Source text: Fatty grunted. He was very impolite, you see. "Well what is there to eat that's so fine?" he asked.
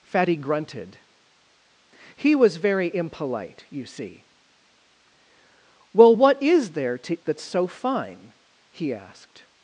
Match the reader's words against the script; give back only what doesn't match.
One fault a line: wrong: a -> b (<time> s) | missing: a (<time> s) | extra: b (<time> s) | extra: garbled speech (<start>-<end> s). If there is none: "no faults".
missing: eat (7.3 s)